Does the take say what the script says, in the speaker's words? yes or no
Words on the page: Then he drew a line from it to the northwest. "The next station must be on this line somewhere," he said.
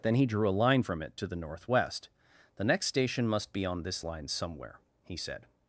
yes